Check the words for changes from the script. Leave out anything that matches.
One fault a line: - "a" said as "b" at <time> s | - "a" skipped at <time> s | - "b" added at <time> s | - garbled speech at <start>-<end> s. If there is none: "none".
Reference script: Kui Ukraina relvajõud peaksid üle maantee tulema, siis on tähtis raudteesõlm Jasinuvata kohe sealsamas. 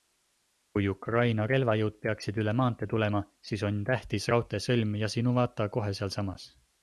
none